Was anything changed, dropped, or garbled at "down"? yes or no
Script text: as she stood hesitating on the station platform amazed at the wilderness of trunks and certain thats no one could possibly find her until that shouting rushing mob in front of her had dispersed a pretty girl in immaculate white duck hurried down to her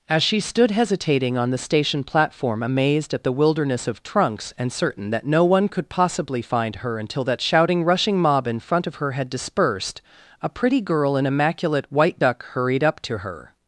yes